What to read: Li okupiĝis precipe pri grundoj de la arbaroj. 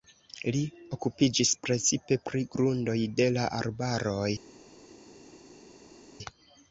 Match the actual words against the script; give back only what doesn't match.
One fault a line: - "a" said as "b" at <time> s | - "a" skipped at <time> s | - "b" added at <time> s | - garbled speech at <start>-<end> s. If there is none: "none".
none